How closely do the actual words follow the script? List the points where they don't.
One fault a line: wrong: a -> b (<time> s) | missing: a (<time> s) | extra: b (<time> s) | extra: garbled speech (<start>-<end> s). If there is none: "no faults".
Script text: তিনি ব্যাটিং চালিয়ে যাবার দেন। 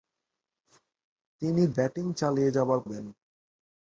no faults